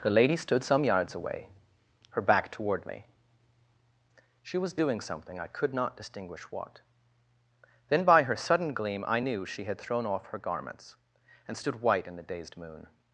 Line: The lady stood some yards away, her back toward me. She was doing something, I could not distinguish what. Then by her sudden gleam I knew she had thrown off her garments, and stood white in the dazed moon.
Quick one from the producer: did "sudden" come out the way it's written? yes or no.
yes